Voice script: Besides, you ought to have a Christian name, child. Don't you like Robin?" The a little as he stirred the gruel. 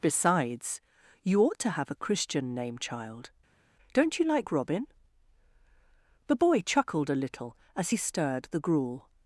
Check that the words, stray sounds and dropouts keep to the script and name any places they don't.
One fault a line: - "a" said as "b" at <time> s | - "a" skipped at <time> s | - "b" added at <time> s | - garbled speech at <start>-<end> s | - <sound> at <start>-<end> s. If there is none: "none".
- "boy chuckled" added at 6.3 s